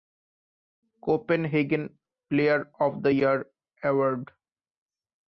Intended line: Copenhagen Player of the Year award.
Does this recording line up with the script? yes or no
yes